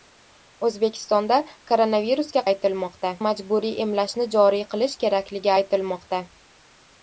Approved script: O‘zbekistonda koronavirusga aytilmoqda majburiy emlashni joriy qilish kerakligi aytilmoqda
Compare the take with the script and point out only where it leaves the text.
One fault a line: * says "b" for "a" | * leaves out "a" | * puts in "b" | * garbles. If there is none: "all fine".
all fine